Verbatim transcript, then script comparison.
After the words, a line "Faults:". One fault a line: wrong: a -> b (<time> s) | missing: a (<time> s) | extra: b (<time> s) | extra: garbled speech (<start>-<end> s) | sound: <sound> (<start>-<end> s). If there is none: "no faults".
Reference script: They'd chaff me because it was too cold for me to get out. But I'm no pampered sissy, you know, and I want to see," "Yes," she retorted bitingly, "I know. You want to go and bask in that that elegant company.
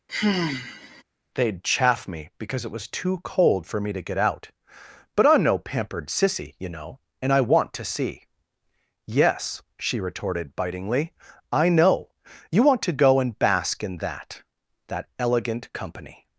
They'd chaff me because it was too cold for me to get out. But I'm no pampered sissy, you know, and I want to see," "Yes," she retorted bitingly, "I know. You want to go and bask in that that elegant company.
Faults:
sound: sigh (0.1-1.0 s)